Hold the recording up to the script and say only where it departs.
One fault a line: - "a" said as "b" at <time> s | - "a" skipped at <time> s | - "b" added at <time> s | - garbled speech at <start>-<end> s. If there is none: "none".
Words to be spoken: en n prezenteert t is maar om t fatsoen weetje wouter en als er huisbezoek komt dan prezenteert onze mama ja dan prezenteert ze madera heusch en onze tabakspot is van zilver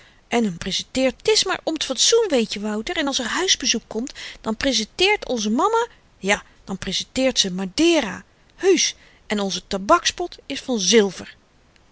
none